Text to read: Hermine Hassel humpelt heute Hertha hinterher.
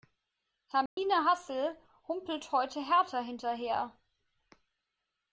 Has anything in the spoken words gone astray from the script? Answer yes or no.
no